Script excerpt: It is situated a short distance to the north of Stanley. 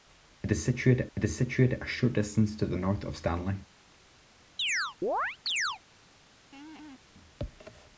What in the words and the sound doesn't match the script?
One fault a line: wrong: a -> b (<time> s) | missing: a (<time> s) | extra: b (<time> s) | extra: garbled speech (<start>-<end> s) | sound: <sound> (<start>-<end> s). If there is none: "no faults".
extra: it is situated (1.1 s)
sound: chirp (4.6-5.8 s)
sound: laugh (6.5-7.0 s)